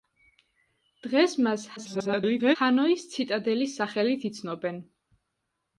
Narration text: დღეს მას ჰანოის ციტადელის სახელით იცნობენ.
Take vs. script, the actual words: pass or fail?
fail